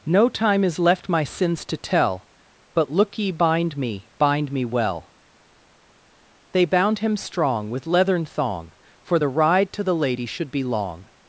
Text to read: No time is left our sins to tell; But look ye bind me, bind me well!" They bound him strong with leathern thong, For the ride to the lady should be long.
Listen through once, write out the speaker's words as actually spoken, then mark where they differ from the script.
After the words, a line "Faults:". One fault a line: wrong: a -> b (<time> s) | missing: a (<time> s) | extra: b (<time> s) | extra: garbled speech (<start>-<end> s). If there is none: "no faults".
No time is left my sins to tell; But look ye bind me, bind me well!" They bound him strong with leathern thong, For the ride to the lady should be long.
Faults:
wrong: our -> my (1.1 s)